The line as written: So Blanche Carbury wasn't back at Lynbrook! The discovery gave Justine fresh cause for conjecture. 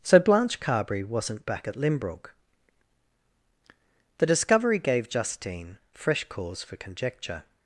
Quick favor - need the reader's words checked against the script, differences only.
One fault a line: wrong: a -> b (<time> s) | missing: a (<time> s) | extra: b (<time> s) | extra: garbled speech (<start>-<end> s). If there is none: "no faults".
no faults